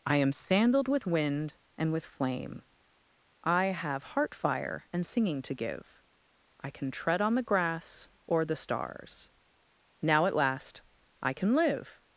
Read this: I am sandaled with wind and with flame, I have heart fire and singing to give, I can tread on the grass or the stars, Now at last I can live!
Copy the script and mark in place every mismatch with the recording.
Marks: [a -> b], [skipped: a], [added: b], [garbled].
I am sandaled with wind and with flame, I have heart fire and singing to give, I can tread on the grass or the stars, Now at last I can live!